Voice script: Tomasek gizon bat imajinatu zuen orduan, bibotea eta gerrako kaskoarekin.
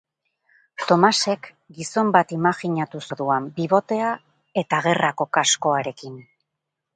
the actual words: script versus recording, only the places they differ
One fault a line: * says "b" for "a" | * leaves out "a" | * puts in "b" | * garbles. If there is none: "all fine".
* leaves out "zuen"